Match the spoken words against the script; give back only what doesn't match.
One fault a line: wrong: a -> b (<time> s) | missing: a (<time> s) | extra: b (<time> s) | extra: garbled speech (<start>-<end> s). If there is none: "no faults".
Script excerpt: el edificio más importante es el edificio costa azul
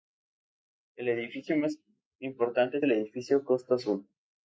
no faults